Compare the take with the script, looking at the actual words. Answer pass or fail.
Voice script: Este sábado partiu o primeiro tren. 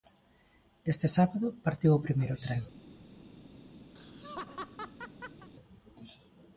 pass